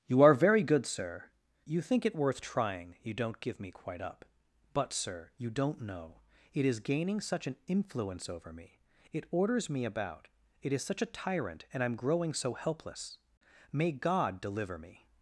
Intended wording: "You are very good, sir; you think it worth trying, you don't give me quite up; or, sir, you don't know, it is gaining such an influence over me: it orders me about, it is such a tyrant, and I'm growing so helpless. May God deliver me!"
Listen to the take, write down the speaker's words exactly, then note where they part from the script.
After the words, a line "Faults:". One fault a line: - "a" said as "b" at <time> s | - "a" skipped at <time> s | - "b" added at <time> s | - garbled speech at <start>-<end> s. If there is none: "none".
"You are very good, sir; you think it worth trying, you don't give me quite up; but, sir, you don't know, it is gaining such an influence over me: it orders me about, it is such a tyrant, and I'm growing so helpless. May God deliver me!"
Faults:
- "or" said as "but" at 4.7 s